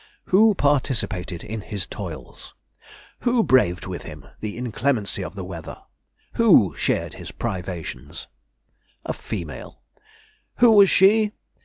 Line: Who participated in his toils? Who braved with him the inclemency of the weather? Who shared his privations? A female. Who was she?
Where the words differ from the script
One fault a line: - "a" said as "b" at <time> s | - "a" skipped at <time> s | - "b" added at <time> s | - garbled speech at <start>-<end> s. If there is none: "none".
none